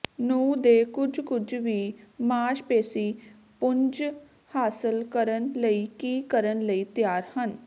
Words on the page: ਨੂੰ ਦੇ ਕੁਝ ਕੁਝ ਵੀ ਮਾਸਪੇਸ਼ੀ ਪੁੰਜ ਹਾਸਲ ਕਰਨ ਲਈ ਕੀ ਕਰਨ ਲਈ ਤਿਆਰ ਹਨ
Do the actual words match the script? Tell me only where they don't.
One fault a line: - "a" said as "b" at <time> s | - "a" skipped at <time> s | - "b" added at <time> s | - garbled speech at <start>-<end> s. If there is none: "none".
none